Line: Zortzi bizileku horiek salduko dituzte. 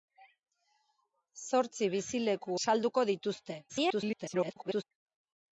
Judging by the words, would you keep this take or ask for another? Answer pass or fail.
fail